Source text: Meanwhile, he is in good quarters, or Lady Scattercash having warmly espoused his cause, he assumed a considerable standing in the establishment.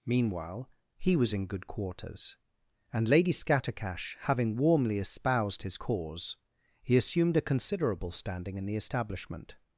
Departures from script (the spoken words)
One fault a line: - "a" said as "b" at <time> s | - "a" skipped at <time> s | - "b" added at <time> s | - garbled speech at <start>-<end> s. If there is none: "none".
- "is" said as "was" at 1.1 s
- "or" said as "and" at 2.9 s